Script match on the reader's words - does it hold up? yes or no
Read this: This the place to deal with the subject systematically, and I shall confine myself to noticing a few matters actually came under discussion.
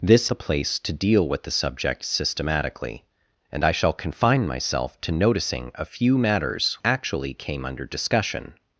yes